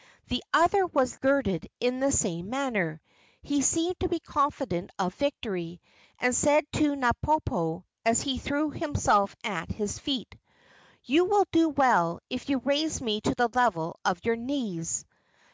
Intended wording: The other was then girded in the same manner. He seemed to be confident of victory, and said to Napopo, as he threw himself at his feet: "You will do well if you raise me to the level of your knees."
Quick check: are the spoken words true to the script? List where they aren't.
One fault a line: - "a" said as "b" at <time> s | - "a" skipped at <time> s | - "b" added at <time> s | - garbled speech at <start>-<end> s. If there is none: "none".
- "then" skipped at 1.1 s